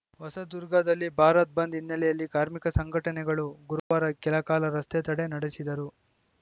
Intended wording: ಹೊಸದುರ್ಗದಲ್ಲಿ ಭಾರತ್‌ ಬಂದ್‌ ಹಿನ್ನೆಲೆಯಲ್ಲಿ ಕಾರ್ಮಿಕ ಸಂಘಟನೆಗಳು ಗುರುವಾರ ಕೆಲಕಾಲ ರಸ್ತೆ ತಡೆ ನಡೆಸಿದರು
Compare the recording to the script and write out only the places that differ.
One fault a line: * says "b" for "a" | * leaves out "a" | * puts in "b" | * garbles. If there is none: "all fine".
all fine